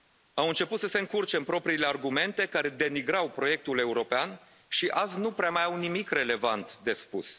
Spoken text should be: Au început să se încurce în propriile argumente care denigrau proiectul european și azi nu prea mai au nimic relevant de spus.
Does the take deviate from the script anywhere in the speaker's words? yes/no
no